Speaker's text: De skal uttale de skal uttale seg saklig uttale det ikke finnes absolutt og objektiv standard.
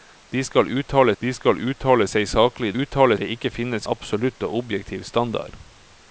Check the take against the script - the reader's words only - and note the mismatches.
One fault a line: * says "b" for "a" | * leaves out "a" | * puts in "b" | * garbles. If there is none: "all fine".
all fine